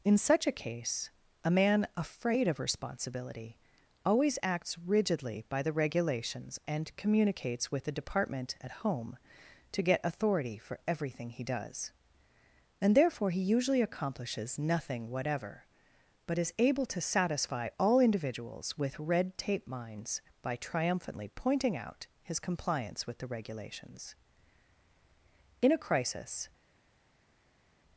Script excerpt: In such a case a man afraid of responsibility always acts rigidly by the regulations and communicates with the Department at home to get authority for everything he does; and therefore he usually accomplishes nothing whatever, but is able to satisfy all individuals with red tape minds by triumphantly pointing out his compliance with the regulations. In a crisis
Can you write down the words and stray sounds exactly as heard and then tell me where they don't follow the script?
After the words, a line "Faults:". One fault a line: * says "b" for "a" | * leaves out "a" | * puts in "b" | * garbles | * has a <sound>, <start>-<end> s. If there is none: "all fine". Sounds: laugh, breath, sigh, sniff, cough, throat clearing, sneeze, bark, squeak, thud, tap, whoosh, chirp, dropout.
In such a case a man afraid of responsibility always acts rigidly by the regulations and communicates with the Department at home to get authority for everything he does; and therefore he usually accomplishes nothing whatever, but is able to satisfy all individuals with red tape minds by triumphantly pointing out his compliance with the regulations. In a crisis
Faults:
all fine